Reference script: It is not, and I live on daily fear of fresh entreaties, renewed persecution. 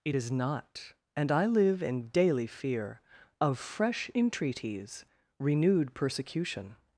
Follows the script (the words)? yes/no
no